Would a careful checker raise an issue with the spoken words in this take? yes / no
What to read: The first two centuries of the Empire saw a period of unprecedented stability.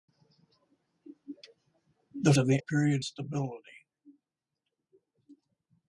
yes